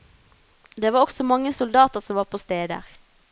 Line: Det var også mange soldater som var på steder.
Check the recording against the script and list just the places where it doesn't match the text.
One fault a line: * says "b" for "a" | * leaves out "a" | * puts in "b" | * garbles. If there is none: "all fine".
all fine